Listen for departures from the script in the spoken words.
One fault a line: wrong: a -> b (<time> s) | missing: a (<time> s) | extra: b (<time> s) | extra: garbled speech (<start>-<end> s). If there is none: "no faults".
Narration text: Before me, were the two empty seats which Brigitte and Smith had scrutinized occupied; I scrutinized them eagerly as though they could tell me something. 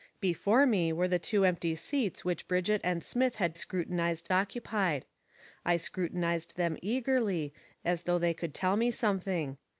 no faults